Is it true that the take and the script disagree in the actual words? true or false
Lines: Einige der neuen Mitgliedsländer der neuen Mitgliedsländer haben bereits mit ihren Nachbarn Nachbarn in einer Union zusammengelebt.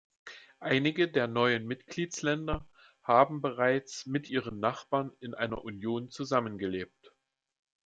true